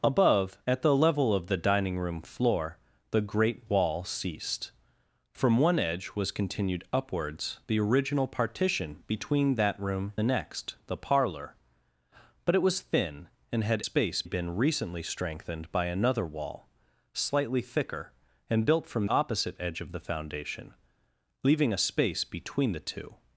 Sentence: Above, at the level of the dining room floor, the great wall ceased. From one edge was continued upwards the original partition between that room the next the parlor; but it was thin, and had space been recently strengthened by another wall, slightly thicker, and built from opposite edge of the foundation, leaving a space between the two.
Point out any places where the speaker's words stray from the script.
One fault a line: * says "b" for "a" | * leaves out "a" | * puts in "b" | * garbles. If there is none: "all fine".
all fine